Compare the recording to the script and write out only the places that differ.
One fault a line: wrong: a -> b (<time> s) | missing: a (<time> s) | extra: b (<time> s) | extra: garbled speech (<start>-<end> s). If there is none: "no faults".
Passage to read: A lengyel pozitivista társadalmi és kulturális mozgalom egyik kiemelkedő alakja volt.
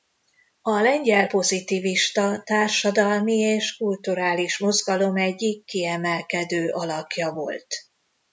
no faults